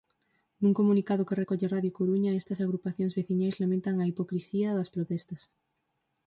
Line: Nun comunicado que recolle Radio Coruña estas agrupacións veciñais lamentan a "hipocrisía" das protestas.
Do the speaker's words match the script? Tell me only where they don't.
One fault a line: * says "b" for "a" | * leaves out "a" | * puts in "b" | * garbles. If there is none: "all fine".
all fine